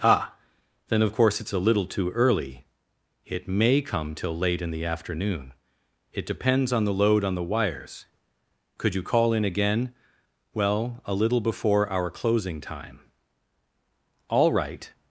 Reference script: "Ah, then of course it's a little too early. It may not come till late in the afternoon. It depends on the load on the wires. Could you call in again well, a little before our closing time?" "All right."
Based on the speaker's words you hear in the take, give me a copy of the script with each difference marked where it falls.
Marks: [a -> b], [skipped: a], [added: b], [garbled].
"Ah, then of course it's a little too early. It may [skipped: not] come till late in the afternoon. It depends on the load on the wires. Could you call in again well, a little before our closing time?" "All right."